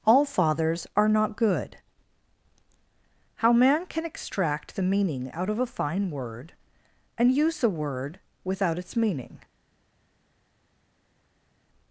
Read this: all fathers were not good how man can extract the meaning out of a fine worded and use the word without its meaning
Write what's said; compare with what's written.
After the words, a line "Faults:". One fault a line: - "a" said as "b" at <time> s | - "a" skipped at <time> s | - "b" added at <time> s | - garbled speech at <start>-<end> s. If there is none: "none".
all fathers are not good how man can extract the meaning out of a fine word and use the word without its meaning
Faults:
- "were" said as "are" at 1.0 s
- "worded" said as "word" at 6.1 s